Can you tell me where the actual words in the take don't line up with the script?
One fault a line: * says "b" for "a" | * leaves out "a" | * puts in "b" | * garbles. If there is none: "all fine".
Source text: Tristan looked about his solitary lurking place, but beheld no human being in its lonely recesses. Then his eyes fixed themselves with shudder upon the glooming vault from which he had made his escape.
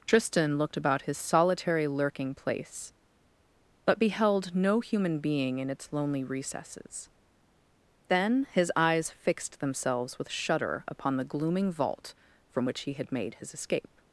all fine